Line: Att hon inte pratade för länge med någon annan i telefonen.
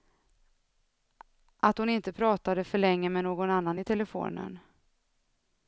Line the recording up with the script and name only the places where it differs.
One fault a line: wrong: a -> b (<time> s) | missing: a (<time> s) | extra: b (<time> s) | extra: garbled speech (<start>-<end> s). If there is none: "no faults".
no faults